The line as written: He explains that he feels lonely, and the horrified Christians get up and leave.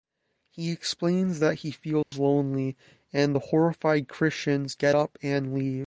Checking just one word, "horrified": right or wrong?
right